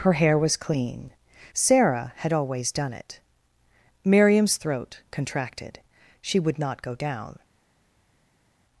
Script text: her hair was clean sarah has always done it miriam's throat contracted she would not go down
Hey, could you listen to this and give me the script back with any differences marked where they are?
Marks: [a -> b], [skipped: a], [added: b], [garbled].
her hair was clean sarah [has -> had] always done it miriam's throat contracted she would not go down